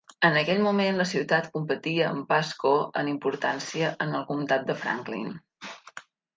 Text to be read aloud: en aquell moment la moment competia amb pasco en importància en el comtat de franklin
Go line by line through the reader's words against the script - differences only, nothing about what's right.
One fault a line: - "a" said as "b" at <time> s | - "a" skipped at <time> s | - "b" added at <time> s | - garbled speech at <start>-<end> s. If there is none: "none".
- "moment" said as "ciutat" at 1.1 s